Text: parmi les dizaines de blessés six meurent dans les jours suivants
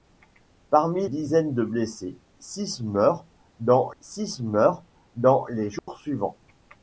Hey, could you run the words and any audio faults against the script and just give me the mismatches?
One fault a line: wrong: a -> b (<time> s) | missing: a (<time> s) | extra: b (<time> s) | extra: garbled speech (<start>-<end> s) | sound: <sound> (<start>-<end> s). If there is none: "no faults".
missing: les (1.1 s)
extra: six meurent dans (4.0 s)
sound: dropout (5.8-5.9 s)